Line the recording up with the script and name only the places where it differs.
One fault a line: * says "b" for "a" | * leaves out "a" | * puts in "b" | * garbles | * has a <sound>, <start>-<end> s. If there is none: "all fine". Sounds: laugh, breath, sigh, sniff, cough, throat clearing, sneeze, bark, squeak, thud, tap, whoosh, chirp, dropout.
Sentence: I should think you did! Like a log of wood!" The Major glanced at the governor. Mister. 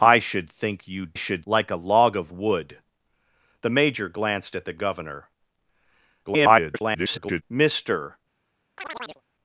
* says "should" for "did"
* garbles
* has a chirp, 8.8-9.2 s